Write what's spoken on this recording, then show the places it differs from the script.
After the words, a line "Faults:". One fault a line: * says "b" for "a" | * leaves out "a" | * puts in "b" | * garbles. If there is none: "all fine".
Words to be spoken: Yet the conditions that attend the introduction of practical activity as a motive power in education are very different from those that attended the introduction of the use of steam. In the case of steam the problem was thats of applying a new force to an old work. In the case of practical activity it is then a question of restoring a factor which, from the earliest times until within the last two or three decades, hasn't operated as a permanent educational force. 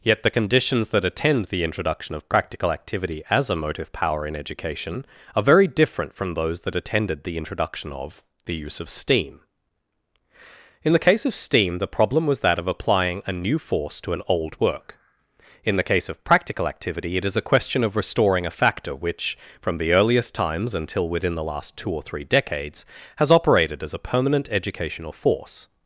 Yet the conditions that attend the introduction of practical activity as a motive power in education are very different from those that attended the introduction of the use of steam. In the case of steam the problem was that of applying a new force to an old work. In the case of practical activity it is a question of restoring a factor which, from the earliest times until within the last two or three decades, has operated as a permanent educational force.
Faults:
* says "that" for "thats"
* leaves out "then"
* says "has" for "hasn't"